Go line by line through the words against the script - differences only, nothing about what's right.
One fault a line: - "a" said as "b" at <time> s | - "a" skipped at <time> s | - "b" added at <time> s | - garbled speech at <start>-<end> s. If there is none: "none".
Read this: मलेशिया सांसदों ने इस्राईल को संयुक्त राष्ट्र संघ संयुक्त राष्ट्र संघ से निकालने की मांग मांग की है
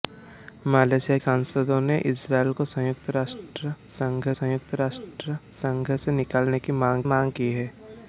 none